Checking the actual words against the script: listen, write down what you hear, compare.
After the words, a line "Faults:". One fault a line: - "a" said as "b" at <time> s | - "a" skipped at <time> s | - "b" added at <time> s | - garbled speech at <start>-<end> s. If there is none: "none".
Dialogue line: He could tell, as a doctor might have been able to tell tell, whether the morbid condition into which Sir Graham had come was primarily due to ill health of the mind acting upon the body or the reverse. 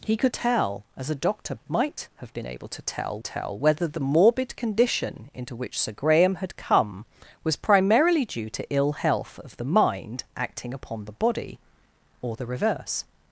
He could tell, as a doctor might have been able to tell tell, whether the morbid condition into which Sir Graham had come was primarily due to ill health of the mind acting upon the body or the reverse.
Faults:
none